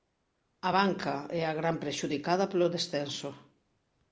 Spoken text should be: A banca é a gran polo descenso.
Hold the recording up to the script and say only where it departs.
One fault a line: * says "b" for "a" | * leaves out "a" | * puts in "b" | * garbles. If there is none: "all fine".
* puts in "prexudicada"